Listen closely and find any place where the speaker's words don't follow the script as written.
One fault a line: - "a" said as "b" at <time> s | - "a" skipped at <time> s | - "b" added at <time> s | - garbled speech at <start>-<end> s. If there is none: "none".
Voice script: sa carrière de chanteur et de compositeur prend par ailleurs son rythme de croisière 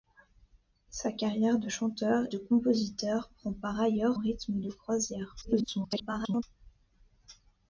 - "et" skipped at 2.2 s
- "son" skipped at 4.2 s
- garbled speech at 5.4-6.4 s